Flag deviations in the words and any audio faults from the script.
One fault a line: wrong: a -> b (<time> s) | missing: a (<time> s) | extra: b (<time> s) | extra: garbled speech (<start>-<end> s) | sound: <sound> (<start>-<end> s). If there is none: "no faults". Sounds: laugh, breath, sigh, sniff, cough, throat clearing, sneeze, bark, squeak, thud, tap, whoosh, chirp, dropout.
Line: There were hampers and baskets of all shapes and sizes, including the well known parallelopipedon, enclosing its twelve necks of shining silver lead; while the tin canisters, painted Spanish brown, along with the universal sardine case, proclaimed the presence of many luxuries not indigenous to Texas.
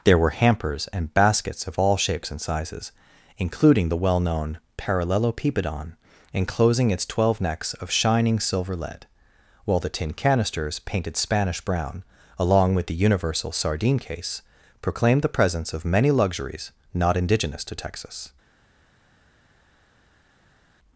no faults